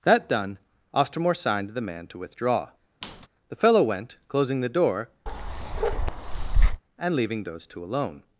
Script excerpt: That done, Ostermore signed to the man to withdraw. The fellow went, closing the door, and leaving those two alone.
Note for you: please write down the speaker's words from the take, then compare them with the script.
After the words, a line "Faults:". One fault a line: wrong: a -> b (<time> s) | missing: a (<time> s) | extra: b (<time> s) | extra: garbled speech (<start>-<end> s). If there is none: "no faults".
That done, Ostermore signed the man to withdraw. The fellow went, closing the door, and leaving those two alone.
Faults:
missing: to (1.7 s)